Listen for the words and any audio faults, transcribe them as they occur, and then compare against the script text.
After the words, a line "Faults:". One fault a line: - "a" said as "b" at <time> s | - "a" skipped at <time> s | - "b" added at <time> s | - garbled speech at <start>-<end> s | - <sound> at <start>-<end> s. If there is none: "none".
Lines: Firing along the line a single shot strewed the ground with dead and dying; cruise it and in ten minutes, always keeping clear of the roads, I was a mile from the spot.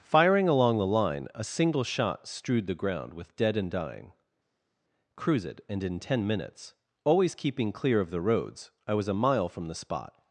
Firing along the line a single shot strewed the ground with dead and dying; cruise it and in ten minutes, always keeping clear of the roads, I was a mile from the spot.
Faults:
none